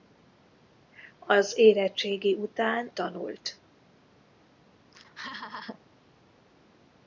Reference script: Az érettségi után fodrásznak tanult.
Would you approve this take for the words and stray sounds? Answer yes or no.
no